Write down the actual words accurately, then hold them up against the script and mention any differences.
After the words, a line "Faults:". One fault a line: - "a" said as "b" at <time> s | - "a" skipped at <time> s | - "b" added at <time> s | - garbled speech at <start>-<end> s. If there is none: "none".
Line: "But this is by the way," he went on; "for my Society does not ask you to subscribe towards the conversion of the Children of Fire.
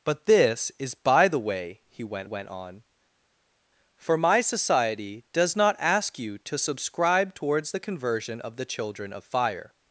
"But this is by the way," he went went on; "for my Society does not ask you to subscribe towards the conversion of the Children of Fire.
Faults:
- "went" added at 2.2 s